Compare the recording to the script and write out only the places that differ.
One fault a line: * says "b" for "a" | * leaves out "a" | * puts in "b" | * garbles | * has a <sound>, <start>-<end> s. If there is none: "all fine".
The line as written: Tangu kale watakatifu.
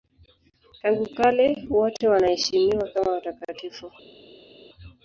* puts in "wote wanaheshimiwa kama"